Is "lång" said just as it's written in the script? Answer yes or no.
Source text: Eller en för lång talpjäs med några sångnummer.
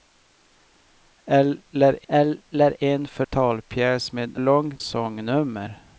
no